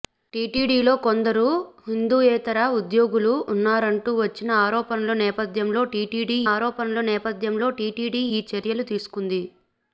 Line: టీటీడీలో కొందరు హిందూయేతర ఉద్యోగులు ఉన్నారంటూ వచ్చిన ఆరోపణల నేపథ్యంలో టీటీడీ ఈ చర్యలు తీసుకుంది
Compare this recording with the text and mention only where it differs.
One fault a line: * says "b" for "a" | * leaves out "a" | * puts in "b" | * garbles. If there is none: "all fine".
* puts in "ఆరోపణల నేపథ్యంలో టీటీడీ"